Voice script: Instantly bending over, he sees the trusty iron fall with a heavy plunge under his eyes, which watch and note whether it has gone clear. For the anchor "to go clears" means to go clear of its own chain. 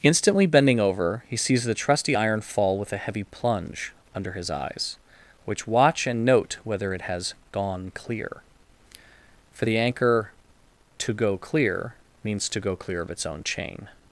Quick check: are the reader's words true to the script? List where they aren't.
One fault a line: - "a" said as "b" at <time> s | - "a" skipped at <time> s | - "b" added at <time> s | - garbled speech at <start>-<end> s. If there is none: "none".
- "clears" said as "clear" at 11.4 s